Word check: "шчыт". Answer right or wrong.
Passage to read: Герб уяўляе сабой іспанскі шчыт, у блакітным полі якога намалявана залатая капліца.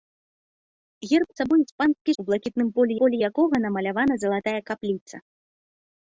wrong